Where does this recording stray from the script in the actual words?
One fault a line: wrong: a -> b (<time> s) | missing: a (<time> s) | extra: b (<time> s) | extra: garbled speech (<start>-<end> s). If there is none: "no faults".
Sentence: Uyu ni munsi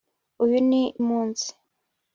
no faults